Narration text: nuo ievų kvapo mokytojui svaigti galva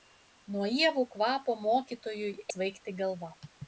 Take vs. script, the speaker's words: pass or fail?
pass